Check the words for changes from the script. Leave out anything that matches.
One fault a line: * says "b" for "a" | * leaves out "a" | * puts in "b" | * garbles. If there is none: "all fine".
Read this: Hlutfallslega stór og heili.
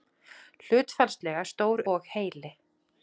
all fine